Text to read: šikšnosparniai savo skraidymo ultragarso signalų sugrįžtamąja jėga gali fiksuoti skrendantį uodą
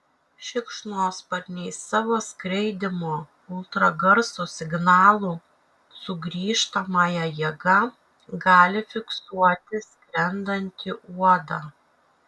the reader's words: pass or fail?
pass